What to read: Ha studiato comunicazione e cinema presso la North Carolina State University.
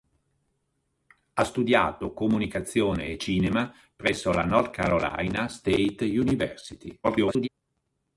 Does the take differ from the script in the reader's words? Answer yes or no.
yes